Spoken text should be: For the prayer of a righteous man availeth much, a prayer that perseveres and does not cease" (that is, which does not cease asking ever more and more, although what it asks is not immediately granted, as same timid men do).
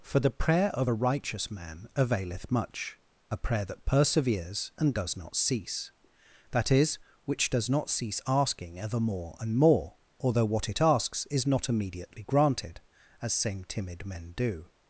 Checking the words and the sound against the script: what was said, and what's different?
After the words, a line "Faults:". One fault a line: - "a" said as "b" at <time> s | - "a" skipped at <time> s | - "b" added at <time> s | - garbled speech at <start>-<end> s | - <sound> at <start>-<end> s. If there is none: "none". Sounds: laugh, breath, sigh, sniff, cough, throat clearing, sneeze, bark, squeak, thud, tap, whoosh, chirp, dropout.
For the prayer of a righteous man availeth much, a prayer that perseveres and does not cease" (that is, which does not cease asking ever more and more, although what it asks is not immediately granted, as same timid men do).
Faults:
none